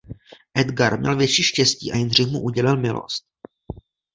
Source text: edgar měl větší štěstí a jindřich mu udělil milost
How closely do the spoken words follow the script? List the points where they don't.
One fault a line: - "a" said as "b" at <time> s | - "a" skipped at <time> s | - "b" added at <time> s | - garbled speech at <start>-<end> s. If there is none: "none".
none